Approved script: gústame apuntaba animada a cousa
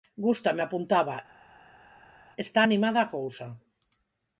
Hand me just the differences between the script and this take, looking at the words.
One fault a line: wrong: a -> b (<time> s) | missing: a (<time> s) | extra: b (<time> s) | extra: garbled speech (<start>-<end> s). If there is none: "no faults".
extra: está (2.4 s)